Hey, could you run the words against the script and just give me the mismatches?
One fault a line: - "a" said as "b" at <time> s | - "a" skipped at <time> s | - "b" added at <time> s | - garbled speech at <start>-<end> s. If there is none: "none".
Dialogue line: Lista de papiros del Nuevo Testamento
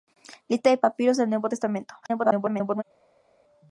- garbled speech at 2.0-2.8 s